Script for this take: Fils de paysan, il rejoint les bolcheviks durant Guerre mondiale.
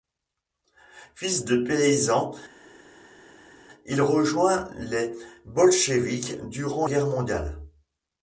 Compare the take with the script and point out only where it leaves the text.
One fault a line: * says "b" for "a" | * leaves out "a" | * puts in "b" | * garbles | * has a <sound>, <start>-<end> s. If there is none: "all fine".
all fine